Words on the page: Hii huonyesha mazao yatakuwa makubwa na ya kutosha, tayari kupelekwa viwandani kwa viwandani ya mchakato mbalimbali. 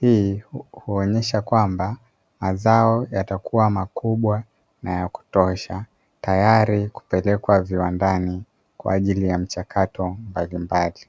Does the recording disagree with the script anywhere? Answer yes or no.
yes